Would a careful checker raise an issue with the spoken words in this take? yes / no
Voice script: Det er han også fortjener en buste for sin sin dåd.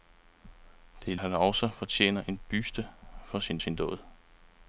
no